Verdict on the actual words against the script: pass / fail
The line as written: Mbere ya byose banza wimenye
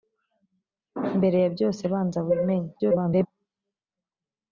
fail